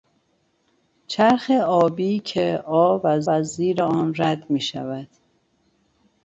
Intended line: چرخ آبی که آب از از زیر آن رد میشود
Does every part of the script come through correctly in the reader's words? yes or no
yes